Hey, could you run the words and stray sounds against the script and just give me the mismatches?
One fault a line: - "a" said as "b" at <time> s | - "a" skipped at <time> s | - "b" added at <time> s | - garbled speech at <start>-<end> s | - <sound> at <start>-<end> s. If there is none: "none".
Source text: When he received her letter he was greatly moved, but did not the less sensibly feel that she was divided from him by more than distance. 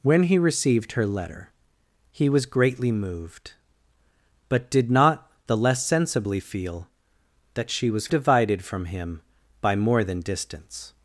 none